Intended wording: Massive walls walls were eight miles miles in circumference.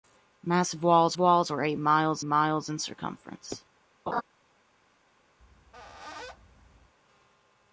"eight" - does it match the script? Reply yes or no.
yes